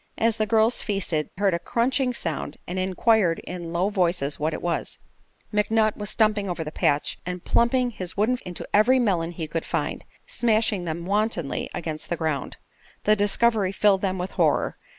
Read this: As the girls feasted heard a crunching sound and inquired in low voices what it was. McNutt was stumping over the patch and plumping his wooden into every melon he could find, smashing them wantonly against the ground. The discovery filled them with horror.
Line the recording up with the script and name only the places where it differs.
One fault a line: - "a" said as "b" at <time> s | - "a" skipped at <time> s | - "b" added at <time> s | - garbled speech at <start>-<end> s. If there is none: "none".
none